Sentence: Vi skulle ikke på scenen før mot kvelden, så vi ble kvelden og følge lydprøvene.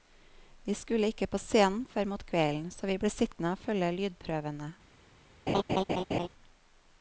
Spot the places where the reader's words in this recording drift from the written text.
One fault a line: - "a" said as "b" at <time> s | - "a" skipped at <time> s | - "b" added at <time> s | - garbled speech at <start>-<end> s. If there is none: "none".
- "kvelden" said as "sittende" at 3.1 s